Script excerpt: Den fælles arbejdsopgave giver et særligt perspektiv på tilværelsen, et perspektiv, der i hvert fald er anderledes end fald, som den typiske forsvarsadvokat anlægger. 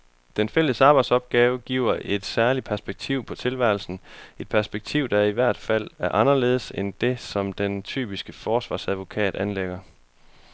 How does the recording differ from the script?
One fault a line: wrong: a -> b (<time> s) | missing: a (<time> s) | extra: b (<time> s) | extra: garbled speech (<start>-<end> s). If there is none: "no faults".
wrong: fald -> det (7.0 s)